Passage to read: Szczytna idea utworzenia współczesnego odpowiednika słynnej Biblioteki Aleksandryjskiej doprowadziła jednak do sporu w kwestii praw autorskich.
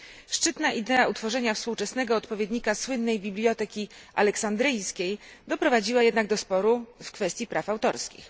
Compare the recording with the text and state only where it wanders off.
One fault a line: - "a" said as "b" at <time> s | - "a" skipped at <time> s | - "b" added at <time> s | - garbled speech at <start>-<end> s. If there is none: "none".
none